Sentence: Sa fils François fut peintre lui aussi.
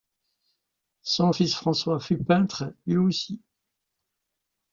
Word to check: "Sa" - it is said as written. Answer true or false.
false